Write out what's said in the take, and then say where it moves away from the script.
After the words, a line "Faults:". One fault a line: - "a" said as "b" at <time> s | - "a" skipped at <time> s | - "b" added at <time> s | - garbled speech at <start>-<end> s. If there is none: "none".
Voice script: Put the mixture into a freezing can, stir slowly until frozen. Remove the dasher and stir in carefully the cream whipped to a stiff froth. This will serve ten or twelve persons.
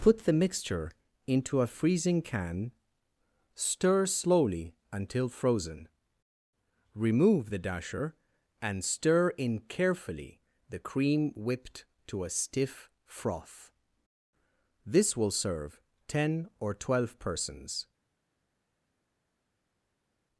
Put the mixture into a freezing can, stir slowly until frozen. Remove the dasher and stir in carefully the cream whipped to a stiff froth. This will serve ten or twelve persons.
Faults:
none